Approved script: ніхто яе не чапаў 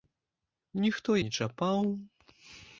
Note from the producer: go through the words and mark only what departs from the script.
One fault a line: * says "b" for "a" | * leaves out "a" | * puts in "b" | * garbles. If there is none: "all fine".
* leaves out "яе"